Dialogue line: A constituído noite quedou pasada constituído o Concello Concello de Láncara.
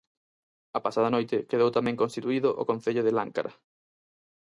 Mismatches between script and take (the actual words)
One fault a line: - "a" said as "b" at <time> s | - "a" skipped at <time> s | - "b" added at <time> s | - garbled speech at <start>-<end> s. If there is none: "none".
- "constituído" said as "pasada" at 0.8 s
- "pasada" said as "tamén" at 1.8 s
- "Concello" skipped at 3.0 s